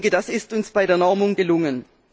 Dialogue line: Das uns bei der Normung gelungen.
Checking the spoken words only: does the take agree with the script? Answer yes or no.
no